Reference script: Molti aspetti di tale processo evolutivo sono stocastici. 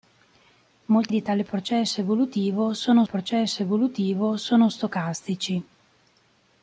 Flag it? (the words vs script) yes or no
yes